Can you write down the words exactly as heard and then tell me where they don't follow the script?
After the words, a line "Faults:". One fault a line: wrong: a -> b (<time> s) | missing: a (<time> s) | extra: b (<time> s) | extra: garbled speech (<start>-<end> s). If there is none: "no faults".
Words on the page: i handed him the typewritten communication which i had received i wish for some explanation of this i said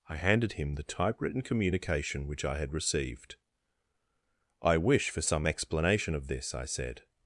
i handed him the typewritten communication which i had received i wish for some explanation of this i said
Faults:
no faults